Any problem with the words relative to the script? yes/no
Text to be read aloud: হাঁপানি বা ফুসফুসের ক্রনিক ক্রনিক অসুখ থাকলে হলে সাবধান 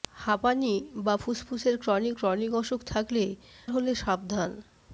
no